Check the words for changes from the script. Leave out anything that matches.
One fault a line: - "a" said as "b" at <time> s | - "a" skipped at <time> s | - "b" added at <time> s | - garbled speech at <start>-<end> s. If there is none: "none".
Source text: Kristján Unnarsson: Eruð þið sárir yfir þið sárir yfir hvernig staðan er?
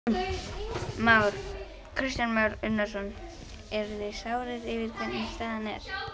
- "Már" added at 2.4 s
- "þið sárir yfir" skipped at 4.9 s